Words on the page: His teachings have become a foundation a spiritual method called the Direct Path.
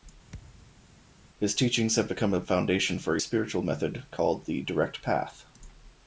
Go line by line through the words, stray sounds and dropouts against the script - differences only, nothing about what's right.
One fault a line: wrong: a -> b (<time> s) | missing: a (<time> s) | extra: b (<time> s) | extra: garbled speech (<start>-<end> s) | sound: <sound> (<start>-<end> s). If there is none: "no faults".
sound: thud (0.3-0.9 s)
extra: for (3.0 s)